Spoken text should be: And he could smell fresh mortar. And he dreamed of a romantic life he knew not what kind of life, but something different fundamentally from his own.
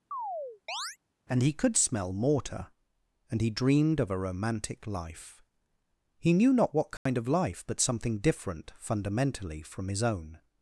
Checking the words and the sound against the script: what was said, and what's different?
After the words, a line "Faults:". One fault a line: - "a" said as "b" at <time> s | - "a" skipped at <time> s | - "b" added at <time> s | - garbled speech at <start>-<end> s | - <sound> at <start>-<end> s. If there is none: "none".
And he could smell mortar. And he dreamed of a romantic life he knew not what kind of life, but something different fundamentally from his own.
Faults:
- chirp at 0.1-1.0 s
- "fresh" skipped at 2.1 s
- dropout at 7.0-7.1 s